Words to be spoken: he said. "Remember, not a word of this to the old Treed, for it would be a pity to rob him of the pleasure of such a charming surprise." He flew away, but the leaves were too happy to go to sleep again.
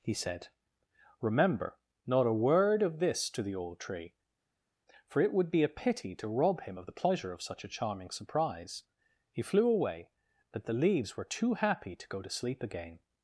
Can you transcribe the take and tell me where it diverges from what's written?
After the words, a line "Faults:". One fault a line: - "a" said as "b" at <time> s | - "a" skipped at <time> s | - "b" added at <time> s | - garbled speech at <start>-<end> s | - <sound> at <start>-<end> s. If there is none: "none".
he said. "Remember, not a word of this to the old Tree, for it would be a pity to rob him of the pleasure of such a charming surprise." He flew away, but the leaves were too happy to go to sleep again.
Faults:
- "Treed" said as "Tree" at 3.8 s